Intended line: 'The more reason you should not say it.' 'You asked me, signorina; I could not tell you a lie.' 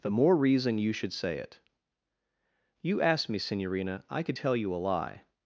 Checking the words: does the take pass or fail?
fail